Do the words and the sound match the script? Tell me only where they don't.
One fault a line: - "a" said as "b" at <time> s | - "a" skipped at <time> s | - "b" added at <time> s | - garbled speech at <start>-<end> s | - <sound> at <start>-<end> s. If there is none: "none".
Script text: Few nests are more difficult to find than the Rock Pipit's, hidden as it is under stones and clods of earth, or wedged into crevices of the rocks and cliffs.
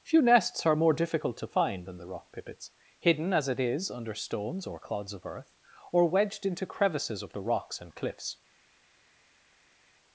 - "and" said as "or" at 4.6 s